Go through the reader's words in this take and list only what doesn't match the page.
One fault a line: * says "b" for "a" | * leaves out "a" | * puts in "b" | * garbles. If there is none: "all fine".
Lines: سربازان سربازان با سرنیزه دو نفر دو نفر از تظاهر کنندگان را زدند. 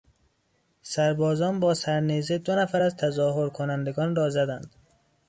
* leaves out "سربازان"
* leaves out "دو نفر"